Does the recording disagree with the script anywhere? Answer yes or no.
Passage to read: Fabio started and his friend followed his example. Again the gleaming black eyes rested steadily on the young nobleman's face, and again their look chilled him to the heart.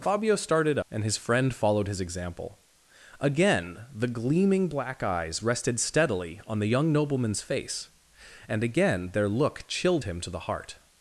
no